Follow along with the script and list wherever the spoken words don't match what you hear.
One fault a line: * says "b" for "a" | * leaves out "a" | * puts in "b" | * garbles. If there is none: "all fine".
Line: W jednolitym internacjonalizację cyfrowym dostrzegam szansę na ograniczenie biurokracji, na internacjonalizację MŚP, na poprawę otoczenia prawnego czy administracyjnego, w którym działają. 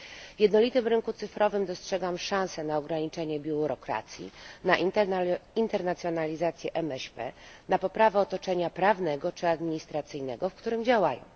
* says "rynku" for "internacjonalizację"